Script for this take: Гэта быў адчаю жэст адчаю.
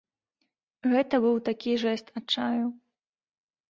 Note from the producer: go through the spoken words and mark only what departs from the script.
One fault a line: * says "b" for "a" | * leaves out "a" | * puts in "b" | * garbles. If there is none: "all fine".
* says "такі" for "адчаю"